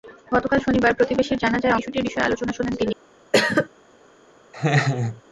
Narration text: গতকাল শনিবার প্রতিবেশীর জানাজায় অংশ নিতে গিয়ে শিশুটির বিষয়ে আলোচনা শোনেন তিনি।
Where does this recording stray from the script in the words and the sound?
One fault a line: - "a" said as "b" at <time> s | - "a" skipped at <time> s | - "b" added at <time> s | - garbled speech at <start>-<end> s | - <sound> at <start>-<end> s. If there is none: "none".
- "অংশ নিতে গিয়ে" skipped at 1.8 s
- cough at 3.3-3.7 s
- laugh at 4.5-5.2 s